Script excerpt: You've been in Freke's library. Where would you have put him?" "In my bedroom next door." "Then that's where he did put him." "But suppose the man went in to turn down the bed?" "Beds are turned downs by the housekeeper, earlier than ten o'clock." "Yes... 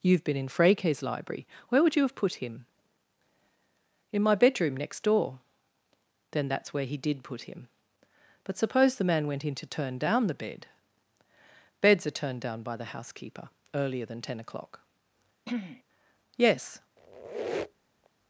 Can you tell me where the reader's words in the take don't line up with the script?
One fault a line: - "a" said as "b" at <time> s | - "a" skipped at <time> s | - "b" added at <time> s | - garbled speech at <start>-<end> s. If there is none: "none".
- "downs" said as "down" at 12.4 s